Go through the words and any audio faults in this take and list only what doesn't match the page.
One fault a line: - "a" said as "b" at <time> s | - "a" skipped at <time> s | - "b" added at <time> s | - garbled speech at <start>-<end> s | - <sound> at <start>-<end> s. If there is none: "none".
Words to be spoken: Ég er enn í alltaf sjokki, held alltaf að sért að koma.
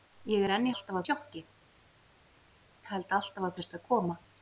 none